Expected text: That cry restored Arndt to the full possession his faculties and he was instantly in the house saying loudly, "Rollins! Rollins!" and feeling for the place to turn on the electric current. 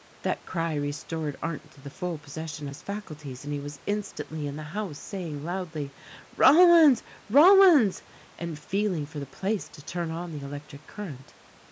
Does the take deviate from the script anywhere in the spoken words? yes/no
no